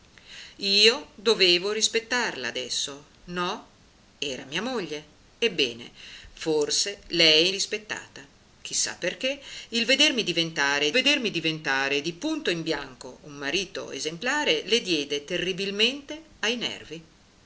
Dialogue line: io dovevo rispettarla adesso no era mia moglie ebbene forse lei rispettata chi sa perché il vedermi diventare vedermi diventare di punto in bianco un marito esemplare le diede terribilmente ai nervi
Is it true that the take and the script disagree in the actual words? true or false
false